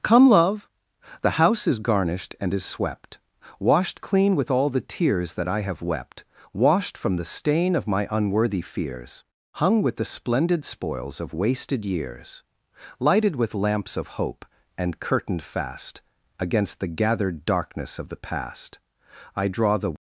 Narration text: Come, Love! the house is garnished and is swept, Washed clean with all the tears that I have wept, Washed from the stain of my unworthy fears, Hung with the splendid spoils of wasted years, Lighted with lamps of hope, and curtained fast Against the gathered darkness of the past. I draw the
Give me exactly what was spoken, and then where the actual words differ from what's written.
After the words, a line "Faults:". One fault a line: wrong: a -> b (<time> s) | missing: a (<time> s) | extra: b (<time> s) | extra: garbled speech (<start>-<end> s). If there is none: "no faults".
Come, Love! the house is garnished and is swept, Washed clean with all the tears that I have wept, Washed from the stain of my unworthy fears, Hung with the splendid spoils of wasted years, Lighted with lamps of hope, and curtained fast Against the gathered darkness of the past. I draw the
Faults:
no faults